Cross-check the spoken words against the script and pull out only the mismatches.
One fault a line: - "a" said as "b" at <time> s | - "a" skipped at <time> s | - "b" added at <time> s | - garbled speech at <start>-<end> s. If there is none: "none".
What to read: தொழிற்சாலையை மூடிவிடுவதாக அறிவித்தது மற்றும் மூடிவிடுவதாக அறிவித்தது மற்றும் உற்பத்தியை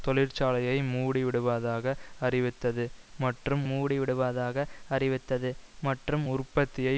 none